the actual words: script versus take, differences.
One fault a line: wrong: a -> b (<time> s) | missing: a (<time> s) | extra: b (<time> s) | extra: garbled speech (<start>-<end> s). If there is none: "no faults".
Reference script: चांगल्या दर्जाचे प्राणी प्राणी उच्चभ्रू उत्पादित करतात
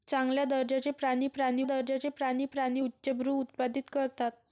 extra: दर्जाचे प्राणी प्राणी (1.6 s)